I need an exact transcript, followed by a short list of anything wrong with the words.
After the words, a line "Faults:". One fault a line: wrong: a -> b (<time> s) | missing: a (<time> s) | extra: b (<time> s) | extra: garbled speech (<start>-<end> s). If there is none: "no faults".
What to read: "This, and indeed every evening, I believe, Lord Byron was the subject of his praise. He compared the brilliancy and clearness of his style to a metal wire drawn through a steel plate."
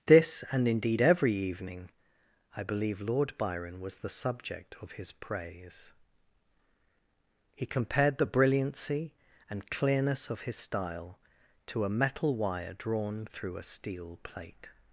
"This, and indeed every evening, I believe, Lord Byron was the subject of his praise. He compared the brilliancy and clearness of his style to a metal wire drawn through a steel plate."
Faults:
no faults